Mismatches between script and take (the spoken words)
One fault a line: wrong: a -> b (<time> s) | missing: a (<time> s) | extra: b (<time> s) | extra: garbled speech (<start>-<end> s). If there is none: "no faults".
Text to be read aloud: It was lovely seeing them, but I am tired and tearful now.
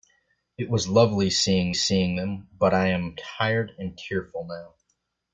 extra: seeing (1.7 s)